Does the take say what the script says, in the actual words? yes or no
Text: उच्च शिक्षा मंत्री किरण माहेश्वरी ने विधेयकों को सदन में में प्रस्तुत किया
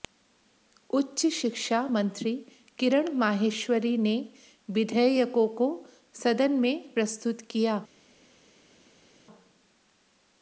no